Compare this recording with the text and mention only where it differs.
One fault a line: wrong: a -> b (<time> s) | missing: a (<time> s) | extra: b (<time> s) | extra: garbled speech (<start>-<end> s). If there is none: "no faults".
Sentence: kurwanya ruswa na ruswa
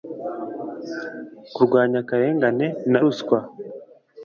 wrong: ruswa -> akarengane (2.0 s)